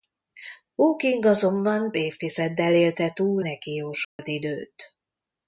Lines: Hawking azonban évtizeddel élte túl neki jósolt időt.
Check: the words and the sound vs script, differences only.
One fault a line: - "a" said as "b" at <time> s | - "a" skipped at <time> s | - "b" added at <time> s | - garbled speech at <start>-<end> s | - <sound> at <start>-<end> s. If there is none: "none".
- dropout at 4.0-4.2 s